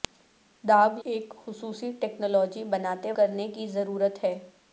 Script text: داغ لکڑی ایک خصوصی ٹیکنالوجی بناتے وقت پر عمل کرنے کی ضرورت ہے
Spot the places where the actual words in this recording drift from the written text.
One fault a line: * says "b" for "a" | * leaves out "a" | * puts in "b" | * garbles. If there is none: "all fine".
* leaves out "لکڑی"
* leaves out "وقت پر عمل"